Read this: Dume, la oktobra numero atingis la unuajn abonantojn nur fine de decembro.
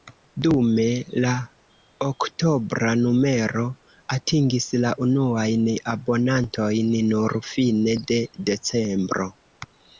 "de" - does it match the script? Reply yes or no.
yes